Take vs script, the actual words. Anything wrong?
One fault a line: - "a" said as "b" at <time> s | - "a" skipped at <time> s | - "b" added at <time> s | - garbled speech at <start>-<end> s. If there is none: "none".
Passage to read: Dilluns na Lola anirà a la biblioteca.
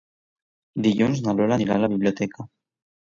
none